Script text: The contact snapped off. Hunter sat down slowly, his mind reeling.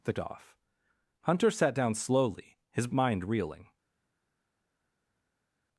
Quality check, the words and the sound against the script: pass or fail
fail